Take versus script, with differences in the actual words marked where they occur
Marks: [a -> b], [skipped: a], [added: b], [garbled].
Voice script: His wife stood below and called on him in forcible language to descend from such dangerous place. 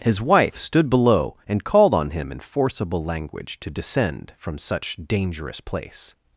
His wife stood below and called on him in forcible language to descend from such dangerous place.